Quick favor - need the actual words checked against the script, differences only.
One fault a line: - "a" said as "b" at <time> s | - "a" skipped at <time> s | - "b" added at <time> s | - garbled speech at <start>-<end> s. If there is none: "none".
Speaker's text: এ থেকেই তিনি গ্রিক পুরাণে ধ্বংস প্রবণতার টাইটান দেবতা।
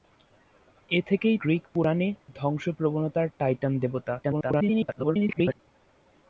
- "তিনি" skipped at 1.4 s
- garbled speech at 4.2-5.6 s